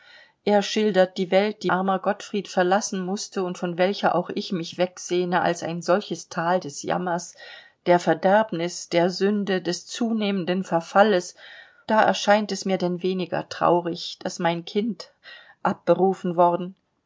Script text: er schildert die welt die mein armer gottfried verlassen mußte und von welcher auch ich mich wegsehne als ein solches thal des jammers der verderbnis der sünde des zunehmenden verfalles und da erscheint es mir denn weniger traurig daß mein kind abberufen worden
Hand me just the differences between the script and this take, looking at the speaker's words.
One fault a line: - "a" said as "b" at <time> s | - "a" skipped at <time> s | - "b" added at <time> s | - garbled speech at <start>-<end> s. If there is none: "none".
- "mein" skipped at 1.7 s
- "und" skipped at 11.3 s